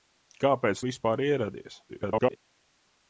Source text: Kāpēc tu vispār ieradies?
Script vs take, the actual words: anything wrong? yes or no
yes